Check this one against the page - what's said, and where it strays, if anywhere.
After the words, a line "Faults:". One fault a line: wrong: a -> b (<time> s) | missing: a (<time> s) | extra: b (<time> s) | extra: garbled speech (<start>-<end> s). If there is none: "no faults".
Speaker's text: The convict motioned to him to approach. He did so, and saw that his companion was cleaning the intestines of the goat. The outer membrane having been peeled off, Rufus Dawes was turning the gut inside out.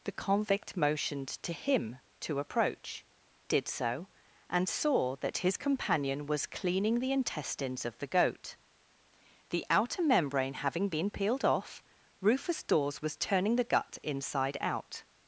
The convict motioned to him to approach. Did so, and saw that his companion was cleaning the intestines of the goat. The outer membrane having been peeled off, Rufus Dawes was turning the gut inside out.
Faults:
missing: He (3.0 s)